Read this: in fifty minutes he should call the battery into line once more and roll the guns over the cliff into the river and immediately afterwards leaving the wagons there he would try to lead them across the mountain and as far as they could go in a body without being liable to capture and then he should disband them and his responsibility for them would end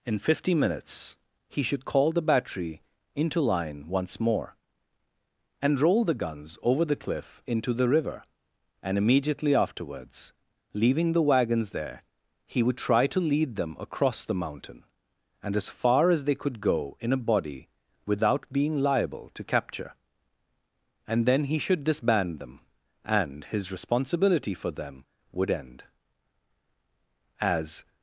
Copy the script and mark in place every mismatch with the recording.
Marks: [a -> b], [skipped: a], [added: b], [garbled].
in fifty minutes he should call the battery into line once more and roll the guns over the cliff into the river and immediately afterwards leaving the wagons there he would try to lead them across the mountain and as far as they could go in a body without being liable to capture and then he should disband them and his responsibility for them would end [added: as]